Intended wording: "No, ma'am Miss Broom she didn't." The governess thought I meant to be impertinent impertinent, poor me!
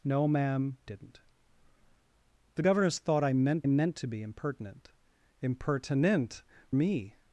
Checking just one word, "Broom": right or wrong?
wrong